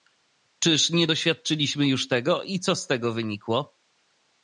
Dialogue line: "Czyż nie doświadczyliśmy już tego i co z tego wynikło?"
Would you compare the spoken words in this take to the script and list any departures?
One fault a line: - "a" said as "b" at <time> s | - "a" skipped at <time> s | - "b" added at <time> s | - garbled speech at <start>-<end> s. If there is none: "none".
none